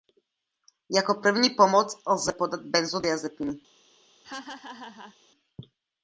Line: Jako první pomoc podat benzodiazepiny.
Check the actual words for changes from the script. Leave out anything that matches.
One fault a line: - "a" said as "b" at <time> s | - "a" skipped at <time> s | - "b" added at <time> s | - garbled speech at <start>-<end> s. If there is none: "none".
- "lze" added at 2.1 s